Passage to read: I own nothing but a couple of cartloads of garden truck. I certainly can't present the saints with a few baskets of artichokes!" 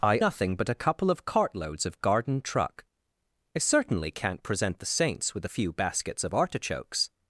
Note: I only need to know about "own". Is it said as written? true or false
false